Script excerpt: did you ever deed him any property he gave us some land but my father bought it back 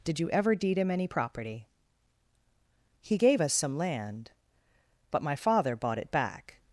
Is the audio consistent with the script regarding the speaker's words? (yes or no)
yes